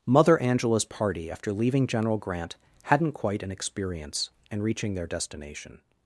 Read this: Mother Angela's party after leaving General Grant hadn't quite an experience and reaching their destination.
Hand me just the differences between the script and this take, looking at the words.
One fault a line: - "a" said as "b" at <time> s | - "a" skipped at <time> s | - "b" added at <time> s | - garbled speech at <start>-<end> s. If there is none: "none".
none